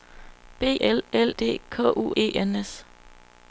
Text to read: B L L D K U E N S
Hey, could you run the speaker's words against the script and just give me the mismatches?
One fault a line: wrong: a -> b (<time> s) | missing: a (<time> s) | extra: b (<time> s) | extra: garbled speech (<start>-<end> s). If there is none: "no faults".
no faults